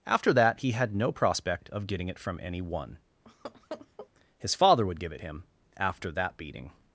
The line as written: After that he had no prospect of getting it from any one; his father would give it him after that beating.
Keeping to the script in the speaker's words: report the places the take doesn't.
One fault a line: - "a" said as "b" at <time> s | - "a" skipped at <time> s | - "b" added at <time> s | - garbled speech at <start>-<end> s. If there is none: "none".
none